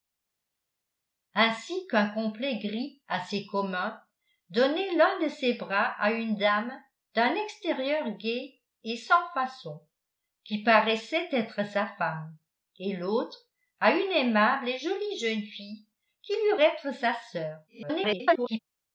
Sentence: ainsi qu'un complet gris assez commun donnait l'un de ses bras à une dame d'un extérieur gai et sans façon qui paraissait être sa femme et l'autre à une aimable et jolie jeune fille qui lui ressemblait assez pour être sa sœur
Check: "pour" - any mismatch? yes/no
yes